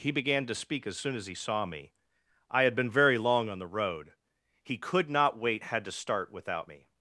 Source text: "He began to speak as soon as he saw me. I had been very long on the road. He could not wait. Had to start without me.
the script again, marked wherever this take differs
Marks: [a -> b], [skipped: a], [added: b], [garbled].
"He began to speak as soon as he saw me. I had been very long on the road. He could not wait. Had to start without me.